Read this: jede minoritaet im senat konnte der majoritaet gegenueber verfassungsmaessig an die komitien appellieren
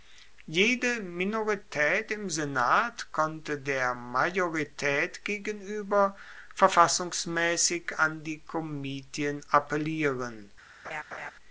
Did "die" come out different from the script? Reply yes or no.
no